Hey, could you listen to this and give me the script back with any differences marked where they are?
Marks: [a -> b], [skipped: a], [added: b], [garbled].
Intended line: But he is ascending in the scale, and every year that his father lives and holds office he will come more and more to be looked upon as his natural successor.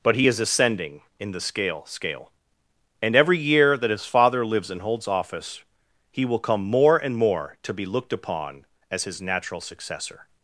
But he is ascending in the scale, [added: scale] and every year that his father lives and holds office he will come more and more to be looked upon as his natural successor.